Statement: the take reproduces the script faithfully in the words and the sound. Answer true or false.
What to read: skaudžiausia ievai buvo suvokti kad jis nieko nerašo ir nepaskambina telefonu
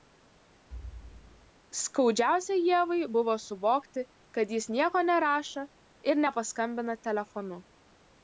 false